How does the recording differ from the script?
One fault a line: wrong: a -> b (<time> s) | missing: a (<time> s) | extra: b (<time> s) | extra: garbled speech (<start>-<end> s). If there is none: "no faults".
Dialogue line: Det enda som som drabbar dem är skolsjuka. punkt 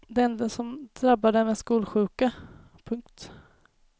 missing: som (0.9 s)